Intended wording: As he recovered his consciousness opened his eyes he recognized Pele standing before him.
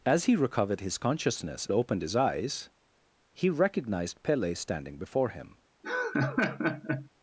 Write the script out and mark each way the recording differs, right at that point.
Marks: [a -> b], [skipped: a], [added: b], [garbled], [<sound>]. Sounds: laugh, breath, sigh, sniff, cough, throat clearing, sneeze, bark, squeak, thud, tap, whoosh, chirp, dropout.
As he recovered his consciousness opened his eyes he recognized Pele standing before him. [laugh]